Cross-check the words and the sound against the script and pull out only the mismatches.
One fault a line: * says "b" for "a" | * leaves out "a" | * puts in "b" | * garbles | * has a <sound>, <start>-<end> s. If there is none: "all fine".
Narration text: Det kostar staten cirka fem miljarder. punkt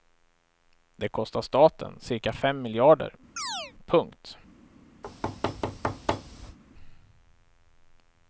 * has a chirp, 3.4-3.7 s
* has a thud, 5.0-6.6 s